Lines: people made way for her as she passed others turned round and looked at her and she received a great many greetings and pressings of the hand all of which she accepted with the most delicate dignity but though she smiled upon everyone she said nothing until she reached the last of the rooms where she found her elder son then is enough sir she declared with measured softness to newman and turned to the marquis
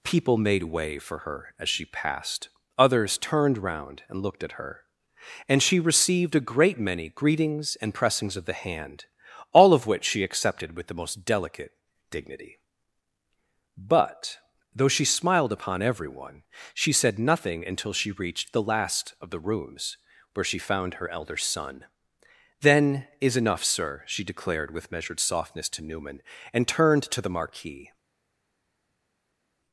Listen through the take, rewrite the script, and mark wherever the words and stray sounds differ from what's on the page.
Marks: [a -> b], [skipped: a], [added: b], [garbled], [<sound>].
people made way for her as she passed others turned round and looked at her and she received a great many greetings and pressings of the hand all of which she accepted with the most delicate dignity but though she smiled upon everyone she said nothing until she reached the last of the rooms where she found her elder son then is enough sir she declared with measured softness to newman and turned to the marquis